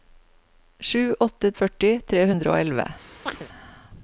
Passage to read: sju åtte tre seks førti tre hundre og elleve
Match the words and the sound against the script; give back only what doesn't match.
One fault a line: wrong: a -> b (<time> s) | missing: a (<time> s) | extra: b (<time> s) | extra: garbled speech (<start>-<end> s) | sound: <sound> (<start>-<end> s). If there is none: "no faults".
missing: tre seks (1.5 s)
sound: chirp (3.3-3.5 s)